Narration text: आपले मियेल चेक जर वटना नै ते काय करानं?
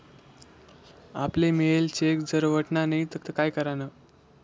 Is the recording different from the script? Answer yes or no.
yes